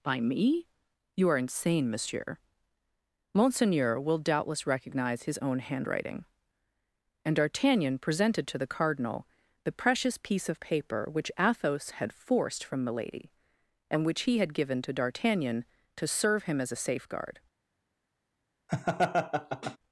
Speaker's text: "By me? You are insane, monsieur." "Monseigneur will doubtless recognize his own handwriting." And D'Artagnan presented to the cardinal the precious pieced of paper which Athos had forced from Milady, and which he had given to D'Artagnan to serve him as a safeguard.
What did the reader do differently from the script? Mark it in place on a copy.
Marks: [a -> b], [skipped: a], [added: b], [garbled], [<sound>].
"By me? You are insane, monsieur." "Monseigneur will doubtless recognize his own handwriting." And D'Artagnan presented to the cardinal the precious [pieced -> piece] of paper which Athos had forced from Milady, and which he had given to D'Artagnan to serve him as a safeguard. [laugh]